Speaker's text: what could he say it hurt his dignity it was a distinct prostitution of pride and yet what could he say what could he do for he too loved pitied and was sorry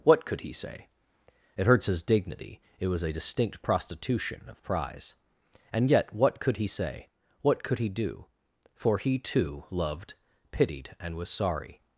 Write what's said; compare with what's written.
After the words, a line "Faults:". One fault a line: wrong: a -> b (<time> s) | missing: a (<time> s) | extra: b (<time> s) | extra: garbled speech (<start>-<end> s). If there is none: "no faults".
what could he say it hurts his dignity it was a distinct prostitution of prize and yet what could he say what could he do for he too loved pitied and was sorry
Faults:
wrong: hurt -> hurts (1.7 s)
wrong: pride -> prize (4.6 s)